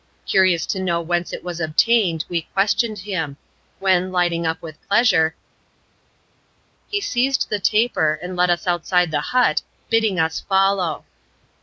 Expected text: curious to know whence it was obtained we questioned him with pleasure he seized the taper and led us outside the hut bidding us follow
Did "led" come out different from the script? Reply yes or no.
no